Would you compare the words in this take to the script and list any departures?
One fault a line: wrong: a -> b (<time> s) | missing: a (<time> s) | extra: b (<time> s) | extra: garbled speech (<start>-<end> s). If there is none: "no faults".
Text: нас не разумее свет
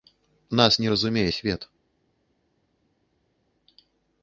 no faults